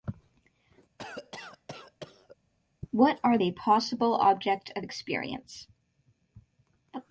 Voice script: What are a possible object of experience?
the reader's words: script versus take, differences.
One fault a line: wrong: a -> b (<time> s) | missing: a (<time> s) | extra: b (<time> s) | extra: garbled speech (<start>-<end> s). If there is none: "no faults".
no faults